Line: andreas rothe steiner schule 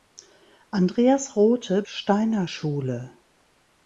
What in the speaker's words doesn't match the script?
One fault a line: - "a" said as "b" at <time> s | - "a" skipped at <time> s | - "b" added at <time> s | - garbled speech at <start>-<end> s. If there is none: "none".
none